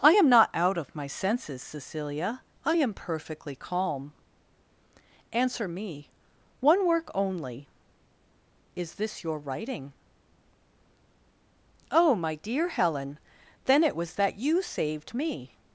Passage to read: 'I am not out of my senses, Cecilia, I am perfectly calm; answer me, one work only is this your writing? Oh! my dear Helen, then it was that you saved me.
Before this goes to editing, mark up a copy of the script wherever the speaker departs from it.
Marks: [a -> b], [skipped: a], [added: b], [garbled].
'I am not out of my senses, Cecilia, I am perfectly calm; answer me, one work only is this your writing? Oh! my dear Helen, then it was that you saved me.